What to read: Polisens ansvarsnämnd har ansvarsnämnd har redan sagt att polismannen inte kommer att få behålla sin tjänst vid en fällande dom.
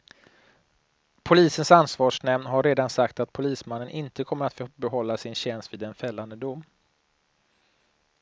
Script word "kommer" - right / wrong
right